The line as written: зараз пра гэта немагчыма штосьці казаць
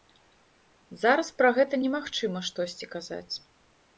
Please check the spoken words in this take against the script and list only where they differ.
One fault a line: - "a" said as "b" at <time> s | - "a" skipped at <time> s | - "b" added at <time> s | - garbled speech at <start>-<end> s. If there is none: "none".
none